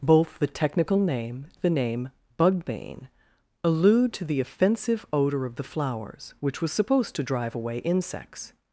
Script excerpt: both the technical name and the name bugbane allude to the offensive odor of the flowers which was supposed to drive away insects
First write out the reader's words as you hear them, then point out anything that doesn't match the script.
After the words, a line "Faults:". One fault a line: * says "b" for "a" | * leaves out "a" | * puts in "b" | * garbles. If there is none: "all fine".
both the technical name the name bugbane allude to the offensive odor of the flowers which was supposed to drive away insects
Faults:
* leaves out "and"